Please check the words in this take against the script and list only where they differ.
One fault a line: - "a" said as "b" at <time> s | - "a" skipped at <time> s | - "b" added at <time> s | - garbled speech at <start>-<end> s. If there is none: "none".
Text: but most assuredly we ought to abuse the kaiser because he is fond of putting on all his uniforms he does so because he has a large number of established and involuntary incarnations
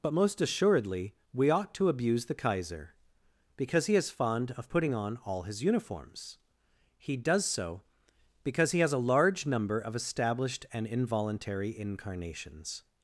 none